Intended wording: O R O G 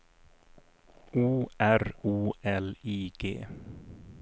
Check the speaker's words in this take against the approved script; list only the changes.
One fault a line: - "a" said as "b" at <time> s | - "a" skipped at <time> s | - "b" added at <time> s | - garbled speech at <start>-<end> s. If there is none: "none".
- "L I" added at 2.4 s